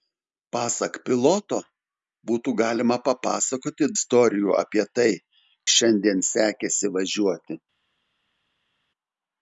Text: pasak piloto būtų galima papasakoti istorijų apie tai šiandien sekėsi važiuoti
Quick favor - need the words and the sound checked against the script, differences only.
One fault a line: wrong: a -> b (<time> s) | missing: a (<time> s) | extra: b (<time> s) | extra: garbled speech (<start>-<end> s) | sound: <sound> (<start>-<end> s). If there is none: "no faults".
no faults